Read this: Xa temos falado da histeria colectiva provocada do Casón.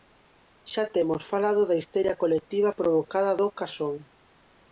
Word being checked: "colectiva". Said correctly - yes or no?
yes